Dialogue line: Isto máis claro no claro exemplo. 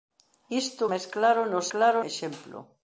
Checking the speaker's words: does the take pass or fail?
pass